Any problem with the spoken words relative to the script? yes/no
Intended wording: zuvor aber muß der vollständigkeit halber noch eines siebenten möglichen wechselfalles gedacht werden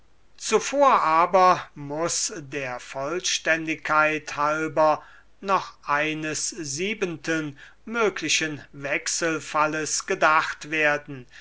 no